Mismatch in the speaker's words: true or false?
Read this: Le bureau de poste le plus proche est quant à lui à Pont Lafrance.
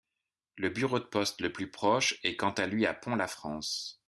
false